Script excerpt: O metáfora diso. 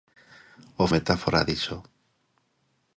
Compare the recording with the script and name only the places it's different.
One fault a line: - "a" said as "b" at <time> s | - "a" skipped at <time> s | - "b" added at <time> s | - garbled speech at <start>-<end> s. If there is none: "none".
none